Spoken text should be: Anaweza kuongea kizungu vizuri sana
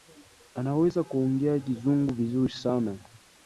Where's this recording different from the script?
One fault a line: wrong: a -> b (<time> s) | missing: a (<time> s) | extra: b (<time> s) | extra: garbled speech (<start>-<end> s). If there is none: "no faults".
no faults